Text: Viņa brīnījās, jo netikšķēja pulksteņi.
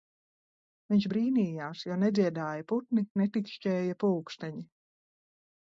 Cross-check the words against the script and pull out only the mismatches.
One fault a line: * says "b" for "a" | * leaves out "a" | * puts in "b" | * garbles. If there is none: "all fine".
* says "Viņš" for "Viņa"
* puts in "nedziedāja putni"